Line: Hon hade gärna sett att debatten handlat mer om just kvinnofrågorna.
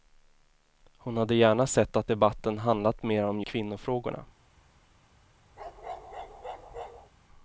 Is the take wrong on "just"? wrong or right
wrong